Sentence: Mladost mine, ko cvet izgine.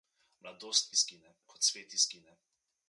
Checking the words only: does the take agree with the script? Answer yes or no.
no